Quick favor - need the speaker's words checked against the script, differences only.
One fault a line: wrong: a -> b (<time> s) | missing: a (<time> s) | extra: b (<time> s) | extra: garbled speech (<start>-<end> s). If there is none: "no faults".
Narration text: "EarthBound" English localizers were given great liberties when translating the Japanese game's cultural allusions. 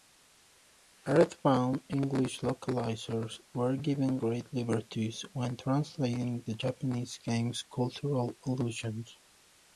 no faults